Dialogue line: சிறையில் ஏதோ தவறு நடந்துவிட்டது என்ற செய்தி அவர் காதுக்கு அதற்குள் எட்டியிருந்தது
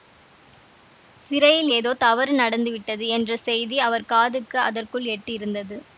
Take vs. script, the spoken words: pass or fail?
pass